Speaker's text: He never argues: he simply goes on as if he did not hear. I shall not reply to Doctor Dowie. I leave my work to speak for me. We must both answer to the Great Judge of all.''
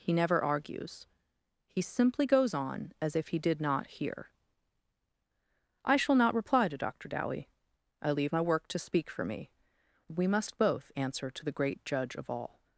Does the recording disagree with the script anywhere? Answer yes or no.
no